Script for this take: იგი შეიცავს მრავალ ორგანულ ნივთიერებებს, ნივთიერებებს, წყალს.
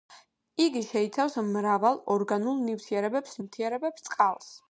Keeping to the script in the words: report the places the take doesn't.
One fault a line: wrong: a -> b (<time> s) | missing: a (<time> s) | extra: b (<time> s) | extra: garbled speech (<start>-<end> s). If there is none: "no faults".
no faults